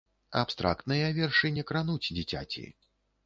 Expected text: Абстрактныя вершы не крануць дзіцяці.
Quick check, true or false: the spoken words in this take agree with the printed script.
true